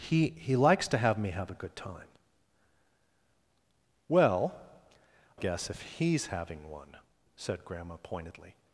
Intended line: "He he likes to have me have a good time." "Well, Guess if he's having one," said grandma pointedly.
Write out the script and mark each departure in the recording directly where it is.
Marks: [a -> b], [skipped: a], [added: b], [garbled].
"He he likes to have me have a good time." "Well, Guess if he's having one," said grandma pointedly.